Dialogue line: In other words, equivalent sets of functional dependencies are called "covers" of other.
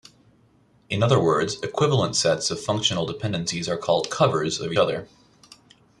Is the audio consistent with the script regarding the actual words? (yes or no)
yes